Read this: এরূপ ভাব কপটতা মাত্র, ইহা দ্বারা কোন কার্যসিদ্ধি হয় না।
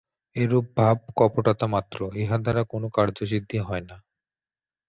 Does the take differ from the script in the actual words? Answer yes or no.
no